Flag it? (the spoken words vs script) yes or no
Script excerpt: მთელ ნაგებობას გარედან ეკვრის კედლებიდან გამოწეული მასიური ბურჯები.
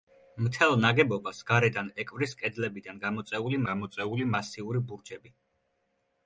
yes